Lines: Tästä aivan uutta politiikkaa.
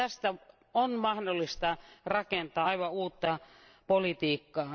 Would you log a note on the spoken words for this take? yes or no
yes